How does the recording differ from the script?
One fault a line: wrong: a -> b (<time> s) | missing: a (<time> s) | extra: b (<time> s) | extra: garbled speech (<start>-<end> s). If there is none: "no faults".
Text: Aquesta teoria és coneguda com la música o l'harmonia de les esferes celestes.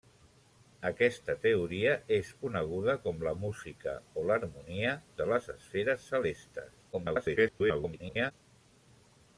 extra: garbled speech (6.9-8.3 s)